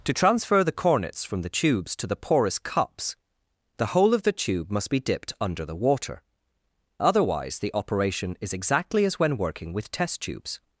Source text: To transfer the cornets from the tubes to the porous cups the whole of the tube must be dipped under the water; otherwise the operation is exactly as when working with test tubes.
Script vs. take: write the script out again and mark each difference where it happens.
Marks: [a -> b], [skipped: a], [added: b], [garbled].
To transfer the cornets from the tubes to the porous cups the whole of the tube must be dipped under the water; otherwise the operation is exactly as when working with test tubes.